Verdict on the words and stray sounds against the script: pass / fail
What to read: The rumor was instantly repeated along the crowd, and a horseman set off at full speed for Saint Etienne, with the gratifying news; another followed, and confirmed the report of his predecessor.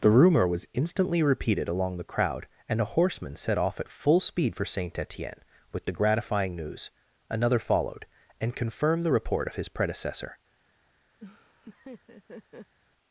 fail